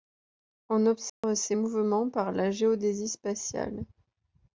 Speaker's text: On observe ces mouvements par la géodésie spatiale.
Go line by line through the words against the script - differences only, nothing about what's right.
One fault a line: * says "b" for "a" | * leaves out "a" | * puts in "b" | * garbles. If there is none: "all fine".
all fine